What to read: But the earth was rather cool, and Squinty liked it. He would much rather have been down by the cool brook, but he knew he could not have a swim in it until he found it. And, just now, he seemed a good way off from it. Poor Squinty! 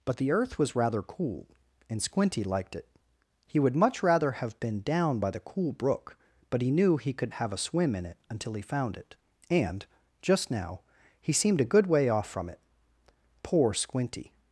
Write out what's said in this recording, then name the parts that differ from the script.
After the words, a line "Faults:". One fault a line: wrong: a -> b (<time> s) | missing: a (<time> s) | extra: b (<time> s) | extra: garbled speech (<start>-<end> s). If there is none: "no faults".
But the earth was rather cool, and Squinty liked it. He would much rather have been down by the cool brook, but he knew he could have a swim in it until he found it. And, just now, he seemed a good way off from it. Poor Squinty!
Faults:
missing: not (7.3 s)